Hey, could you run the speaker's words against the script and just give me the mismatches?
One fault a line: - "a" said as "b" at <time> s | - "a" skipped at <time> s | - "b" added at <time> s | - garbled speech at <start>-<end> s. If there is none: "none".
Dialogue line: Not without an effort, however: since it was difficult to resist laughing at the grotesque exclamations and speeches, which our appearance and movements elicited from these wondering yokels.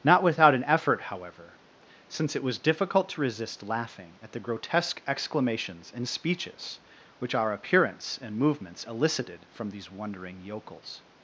none